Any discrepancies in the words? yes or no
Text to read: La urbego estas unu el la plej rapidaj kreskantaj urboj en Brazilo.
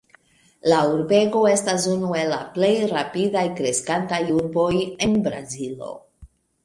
no